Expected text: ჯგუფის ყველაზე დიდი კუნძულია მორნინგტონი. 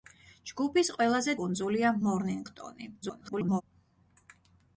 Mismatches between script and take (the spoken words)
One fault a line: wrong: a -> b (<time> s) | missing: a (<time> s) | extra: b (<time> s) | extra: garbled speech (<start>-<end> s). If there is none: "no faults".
missing: დიდი (1.4 s)
extra: garbled speech (3.0-3.6 s)